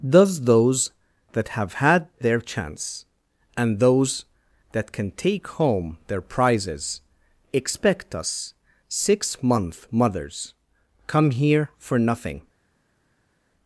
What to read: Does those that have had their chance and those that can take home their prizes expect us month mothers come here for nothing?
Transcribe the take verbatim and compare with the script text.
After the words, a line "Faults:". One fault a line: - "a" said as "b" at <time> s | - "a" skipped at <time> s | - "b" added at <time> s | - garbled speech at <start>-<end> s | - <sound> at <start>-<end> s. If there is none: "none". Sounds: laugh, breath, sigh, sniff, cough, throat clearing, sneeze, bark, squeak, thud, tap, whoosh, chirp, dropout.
Does those that have had their chance and those that can take home their prizes expect us six month mothers come here for nothing?
Faults:
- "six" added at 8.9 s